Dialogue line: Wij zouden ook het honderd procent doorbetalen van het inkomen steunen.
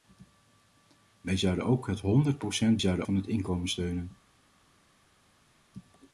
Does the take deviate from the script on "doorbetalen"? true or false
true